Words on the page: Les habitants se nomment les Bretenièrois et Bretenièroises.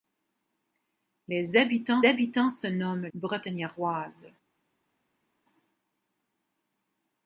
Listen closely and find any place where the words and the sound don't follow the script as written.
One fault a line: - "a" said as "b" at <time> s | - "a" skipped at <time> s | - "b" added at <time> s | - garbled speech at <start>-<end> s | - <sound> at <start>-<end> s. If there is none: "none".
- "habitants" added at 2.1 s
- "les Bretenièrois et" skipped at 3.1 s